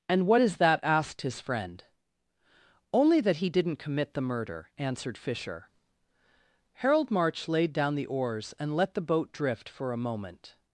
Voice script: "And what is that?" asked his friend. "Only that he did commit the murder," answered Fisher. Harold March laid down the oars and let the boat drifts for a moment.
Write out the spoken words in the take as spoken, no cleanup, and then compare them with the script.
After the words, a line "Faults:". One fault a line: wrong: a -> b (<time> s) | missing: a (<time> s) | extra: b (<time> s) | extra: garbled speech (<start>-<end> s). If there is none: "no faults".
"And what is that?" asked his friend. "Only that he didn't commit the murder," answered Fisher. Harold March laid down the oars and let the boat drift for a moment.
Faults:
wrong: did -> didn't (3.5 s)
wrong: drifts -> drift (9.3 s)